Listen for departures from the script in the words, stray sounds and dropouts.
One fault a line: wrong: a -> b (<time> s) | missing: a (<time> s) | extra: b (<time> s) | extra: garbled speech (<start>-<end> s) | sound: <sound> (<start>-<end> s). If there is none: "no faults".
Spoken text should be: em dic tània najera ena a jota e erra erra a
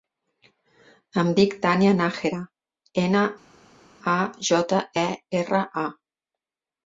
missing: erra (5.6 s)